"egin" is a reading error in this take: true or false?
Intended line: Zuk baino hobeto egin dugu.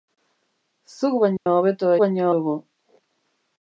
true